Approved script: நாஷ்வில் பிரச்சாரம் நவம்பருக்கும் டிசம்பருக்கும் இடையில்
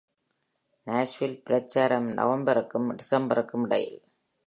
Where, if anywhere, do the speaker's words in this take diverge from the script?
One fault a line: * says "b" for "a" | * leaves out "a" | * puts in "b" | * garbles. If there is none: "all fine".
all fine